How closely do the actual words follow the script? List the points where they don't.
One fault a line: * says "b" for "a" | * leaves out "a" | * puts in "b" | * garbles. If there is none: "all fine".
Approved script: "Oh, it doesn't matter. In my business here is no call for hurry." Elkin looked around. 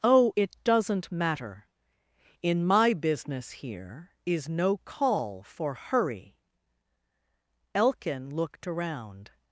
all fine